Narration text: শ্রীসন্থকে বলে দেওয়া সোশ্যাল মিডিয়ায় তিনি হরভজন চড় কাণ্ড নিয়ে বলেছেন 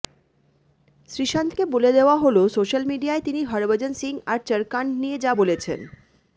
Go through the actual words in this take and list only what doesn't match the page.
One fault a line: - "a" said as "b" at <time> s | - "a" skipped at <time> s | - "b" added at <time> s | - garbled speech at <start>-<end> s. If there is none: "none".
- "হল" added at 2.2 s
- "সিং আর" added at 3.9 s
- "যা" added at 5.2 s